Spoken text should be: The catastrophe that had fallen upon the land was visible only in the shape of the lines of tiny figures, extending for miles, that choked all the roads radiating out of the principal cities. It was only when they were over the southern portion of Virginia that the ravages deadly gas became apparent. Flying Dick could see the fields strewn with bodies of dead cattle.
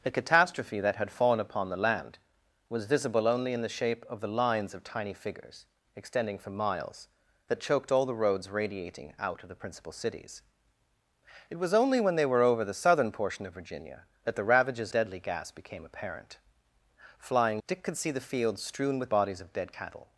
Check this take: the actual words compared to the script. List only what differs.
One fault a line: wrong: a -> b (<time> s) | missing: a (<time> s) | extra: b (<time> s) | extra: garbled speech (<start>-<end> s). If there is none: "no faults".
no faults